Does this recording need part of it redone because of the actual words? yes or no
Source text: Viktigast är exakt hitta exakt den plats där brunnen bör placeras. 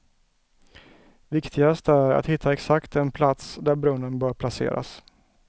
yes